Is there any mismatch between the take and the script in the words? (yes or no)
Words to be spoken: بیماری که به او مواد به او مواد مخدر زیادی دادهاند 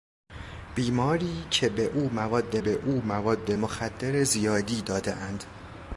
no